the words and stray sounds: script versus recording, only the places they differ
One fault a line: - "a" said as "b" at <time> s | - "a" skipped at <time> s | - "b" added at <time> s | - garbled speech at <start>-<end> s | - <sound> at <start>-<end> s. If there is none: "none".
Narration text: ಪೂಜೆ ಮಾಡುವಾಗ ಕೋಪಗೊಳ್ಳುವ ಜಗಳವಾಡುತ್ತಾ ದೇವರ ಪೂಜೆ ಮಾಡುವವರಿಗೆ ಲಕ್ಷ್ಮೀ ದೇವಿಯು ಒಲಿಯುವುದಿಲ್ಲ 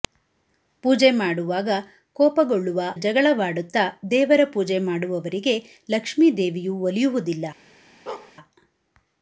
- bark at 8.1-8.3 s